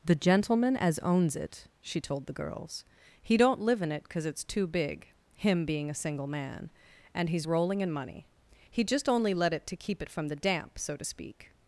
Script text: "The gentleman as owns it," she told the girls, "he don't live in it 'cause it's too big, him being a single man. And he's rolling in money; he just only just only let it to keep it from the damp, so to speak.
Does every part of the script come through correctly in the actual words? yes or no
no